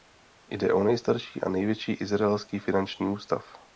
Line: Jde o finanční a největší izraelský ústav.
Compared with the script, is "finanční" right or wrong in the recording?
wrong